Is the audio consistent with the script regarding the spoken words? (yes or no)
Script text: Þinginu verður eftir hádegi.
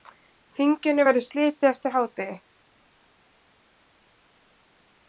no